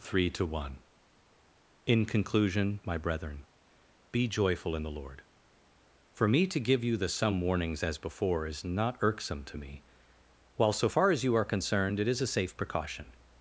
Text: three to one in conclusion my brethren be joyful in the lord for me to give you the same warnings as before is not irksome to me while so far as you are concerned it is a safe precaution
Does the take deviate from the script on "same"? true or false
true